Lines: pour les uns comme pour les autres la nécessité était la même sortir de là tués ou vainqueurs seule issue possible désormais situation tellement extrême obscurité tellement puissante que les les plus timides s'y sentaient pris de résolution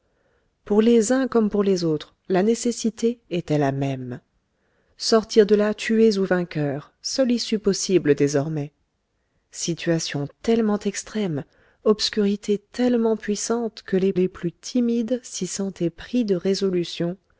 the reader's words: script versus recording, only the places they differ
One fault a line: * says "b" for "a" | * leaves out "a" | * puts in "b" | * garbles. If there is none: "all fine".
all fine